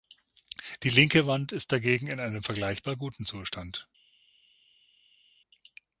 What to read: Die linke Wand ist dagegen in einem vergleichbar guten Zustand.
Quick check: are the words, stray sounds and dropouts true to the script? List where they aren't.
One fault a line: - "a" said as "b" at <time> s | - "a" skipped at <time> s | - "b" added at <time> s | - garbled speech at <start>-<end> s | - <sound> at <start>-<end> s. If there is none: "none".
none